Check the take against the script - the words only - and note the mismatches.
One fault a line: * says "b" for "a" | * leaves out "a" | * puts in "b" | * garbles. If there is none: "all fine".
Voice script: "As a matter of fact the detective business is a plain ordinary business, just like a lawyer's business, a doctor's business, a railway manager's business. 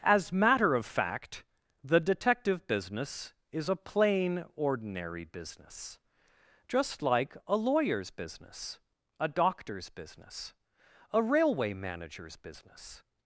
* leaves out "a"